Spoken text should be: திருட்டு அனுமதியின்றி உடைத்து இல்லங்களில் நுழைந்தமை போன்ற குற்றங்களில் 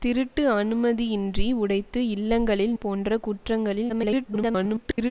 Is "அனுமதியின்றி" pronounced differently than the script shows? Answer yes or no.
no